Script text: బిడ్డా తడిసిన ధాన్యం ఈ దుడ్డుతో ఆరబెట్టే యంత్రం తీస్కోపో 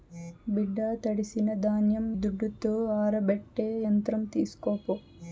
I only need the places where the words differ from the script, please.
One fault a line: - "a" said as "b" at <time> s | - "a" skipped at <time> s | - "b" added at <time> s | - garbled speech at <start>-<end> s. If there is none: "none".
- "ఈ" skipped at 2.1 s